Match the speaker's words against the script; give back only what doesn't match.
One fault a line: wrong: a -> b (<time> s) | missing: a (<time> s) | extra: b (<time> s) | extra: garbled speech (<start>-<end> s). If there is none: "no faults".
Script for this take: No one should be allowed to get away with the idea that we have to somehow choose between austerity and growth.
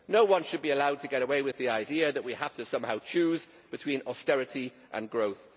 no faults